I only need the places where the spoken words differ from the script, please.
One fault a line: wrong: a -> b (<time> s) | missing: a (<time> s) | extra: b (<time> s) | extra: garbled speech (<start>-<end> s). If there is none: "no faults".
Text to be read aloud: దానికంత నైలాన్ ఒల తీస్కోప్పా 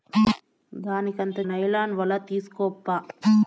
no faults